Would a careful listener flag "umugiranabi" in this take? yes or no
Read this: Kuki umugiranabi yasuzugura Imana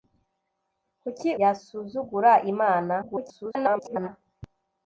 yes